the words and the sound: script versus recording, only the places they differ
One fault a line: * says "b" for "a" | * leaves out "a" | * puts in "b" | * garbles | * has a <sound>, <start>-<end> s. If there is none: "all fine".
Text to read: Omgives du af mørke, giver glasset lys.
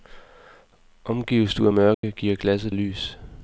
* has a dropout, 1.9-2.0 s